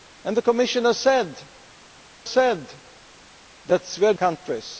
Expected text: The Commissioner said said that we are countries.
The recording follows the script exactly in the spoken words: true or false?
true